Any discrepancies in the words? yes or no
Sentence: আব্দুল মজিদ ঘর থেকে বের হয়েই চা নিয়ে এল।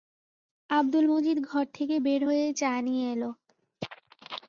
no